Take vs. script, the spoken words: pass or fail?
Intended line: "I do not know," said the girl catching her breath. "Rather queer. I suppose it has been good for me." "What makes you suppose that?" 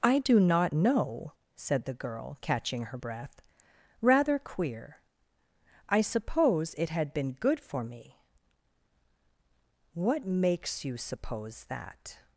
fail